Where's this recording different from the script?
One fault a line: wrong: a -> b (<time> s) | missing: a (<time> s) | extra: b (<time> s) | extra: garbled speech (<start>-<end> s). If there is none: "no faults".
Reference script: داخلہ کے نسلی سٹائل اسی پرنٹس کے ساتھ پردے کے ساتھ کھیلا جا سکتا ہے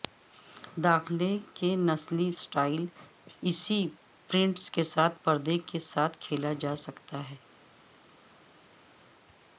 no faults